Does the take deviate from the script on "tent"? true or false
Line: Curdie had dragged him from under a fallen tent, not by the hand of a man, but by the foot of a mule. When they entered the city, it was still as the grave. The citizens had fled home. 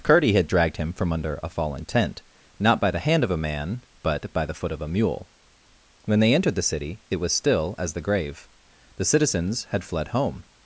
false